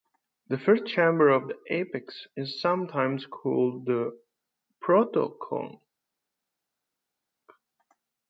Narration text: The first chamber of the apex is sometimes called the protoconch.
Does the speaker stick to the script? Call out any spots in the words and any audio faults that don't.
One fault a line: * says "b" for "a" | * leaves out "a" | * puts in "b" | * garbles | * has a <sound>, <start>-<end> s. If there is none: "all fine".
all fine